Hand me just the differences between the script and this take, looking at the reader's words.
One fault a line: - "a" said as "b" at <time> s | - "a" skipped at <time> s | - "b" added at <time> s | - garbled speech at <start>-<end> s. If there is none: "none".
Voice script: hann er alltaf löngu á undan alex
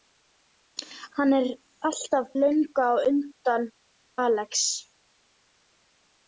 none